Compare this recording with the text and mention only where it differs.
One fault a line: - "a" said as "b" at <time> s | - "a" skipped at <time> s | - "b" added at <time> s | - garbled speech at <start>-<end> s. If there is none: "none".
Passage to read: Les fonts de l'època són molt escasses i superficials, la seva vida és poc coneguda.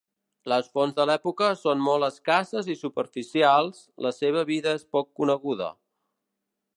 none